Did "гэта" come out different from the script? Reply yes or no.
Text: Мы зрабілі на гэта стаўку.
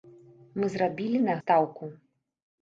yes